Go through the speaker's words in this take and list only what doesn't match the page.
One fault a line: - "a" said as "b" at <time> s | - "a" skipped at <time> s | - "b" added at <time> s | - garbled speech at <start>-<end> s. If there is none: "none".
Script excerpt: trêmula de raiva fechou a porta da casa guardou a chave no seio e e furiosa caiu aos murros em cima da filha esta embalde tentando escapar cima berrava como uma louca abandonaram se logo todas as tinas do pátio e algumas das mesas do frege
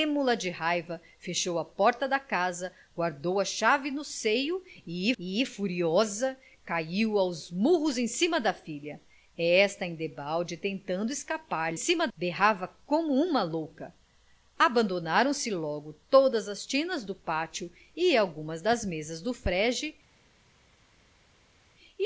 none